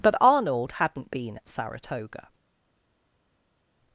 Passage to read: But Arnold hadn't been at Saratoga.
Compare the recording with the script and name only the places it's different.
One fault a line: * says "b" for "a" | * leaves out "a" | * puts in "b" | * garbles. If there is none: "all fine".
all fine